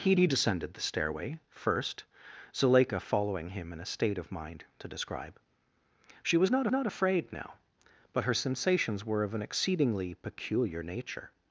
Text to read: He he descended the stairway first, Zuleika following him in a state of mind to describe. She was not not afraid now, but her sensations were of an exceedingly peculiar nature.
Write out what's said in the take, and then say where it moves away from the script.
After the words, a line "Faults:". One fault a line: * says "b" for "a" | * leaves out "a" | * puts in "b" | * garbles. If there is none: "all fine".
He he descended the stairway first, Zuleika following him in a state of mind to describe. She was not not afraid now, but her sensations were of an exceedingly peculiar nature.
Faults:
all fine